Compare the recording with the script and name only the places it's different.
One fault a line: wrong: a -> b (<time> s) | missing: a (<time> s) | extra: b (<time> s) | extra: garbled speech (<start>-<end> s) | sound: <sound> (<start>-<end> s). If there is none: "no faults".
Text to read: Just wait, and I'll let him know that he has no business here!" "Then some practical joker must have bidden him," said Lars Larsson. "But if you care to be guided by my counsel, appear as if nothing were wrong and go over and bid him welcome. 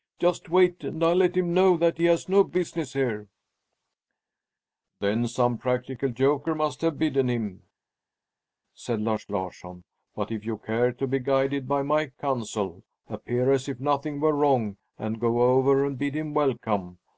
no faults